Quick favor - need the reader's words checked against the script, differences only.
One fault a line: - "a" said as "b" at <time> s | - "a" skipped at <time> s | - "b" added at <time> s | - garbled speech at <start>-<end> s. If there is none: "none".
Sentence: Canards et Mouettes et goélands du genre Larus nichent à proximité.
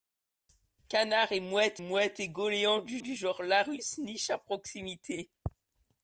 - "Mouettes" added at 1.8 s
- "du" added at 3.0 s